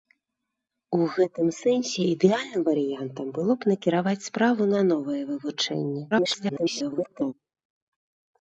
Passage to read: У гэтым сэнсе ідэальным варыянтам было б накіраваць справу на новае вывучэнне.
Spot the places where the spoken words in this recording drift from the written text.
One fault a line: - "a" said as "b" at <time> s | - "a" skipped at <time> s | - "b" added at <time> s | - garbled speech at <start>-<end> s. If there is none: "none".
- garbled speech at 6.1-7.3 s